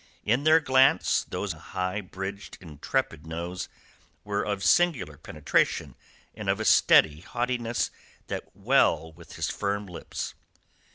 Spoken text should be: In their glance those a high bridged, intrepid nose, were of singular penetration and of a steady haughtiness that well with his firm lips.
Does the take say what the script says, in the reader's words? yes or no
yes